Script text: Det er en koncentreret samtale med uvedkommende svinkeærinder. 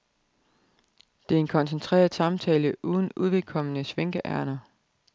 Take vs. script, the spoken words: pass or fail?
fail